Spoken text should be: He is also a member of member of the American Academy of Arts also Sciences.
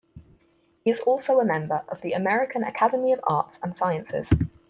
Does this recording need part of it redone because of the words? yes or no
yes